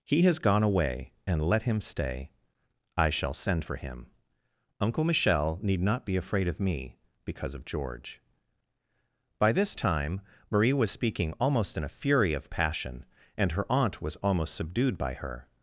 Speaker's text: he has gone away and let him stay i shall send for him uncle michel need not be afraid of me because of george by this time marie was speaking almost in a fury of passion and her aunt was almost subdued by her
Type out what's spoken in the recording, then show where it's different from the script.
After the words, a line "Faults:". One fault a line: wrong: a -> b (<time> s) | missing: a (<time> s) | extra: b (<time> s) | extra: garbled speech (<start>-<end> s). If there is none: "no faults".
he has gone away and let him stay i shall send for him uncle michel need not be afraid of me because of george by this time marie was speaking almost in a fury of passion and her aunt was almost subdued by her
Faults:
no faults